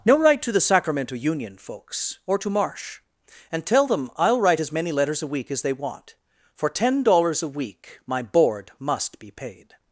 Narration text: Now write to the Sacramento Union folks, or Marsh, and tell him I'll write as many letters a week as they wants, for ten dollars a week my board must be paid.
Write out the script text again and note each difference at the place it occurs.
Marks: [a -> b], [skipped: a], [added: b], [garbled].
Now write to the Sacramento Union folks, or [added: to] Marsh, and tell [him -> them] I'll write as many letters a week as they [wants, -> want] for ten dollars a week my board must be paid.